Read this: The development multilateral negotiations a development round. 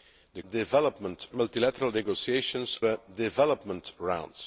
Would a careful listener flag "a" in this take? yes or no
no